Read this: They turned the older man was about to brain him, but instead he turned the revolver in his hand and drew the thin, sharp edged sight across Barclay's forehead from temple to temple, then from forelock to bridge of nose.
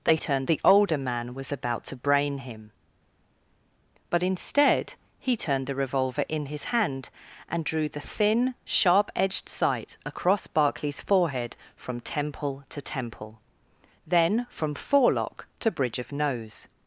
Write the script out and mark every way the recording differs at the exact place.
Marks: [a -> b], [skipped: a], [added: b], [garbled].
They turned the older man was about to brain him, but instead he turned the revolver in his hand and drew the thin, sharp edged sight across Barclay's forehead from temple to temple, then from forelock to bridge of nose.